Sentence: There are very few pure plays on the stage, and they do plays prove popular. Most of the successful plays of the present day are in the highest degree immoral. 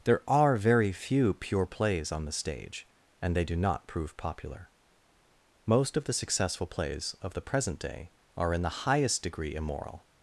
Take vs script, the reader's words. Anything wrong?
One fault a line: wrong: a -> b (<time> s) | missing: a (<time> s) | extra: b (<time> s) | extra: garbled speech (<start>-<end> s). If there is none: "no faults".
wrong: plays -> not (3.5 s)